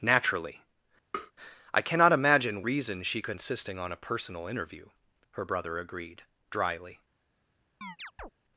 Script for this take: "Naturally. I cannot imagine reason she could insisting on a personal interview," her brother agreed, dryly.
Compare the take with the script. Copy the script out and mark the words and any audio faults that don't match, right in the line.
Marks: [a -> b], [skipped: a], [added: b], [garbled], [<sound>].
"Naturally. [tap] I cannot imagine reason she could insisting on a personal interview," her brother agreed, dryly. [chirp]